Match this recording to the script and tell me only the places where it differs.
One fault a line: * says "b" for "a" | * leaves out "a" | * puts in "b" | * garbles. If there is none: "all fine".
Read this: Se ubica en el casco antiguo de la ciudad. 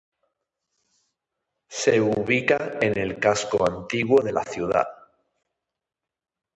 all fine